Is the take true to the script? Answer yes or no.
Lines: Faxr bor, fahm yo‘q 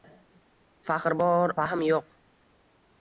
yes